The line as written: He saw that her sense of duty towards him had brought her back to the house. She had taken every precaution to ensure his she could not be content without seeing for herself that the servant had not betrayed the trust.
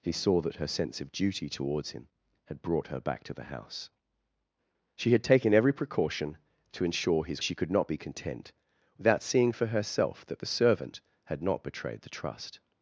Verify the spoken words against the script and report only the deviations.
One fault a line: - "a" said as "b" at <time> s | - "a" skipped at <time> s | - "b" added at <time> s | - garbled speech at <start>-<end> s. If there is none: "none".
none